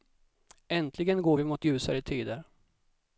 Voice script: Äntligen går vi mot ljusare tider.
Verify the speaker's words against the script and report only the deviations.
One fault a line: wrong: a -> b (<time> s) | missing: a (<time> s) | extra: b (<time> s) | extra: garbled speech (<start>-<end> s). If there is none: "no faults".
no faults